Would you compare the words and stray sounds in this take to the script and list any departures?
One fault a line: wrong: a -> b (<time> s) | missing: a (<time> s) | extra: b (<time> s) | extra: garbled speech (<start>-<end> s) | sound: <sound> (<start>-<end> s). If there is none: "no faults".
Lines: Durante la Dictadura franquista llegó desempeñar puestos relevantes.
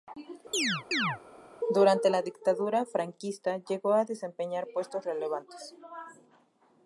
sound: chirp (0.5-1.2 s)
extra: a (3.9 s)